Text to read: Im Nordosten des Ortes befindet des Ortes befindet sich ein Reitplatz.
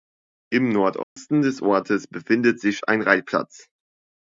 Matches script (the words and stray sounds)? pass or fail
fail